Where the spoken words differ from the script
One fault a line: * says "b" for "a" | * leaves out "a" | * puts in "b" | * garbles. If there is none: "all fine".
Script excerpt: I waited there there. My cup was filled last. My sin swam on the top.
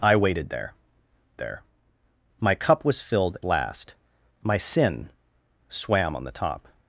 all fine